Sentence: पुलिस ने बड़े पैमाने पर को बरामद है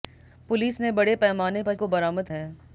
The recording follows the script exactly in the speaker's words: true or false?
true